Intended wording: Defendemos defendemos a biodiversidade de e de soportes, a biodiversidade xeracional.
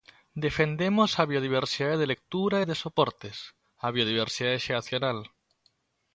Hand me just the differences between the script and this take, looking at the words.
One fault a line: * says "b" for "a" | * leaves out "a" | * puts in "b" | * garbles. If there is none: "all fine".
* leaves out "defendemos"
* puts in "lectura"